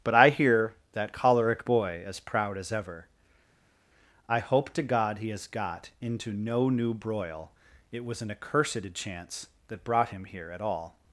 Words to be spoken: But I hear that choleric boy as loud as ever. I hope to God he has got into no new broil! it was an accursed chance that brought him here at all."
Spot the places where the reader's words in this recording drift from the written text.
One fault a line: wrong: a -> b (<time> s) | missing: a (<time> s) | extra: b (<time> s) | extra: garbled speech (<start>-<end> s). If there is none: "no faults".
wrong: loud -> proud (2.2 s)